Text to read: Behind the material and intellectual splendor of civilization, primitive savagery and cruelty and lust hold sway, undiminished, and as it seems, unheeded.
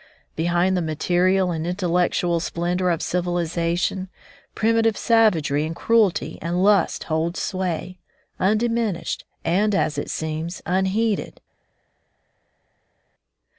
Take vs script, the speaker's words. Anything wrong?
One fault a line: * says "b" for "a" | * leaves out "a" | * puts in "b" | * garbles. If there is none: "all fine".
all fine